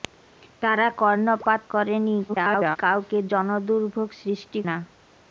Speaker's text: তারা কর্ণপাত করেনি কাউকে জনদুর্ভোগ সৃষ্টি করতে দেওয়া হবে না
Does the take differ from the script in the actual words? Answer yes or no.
yes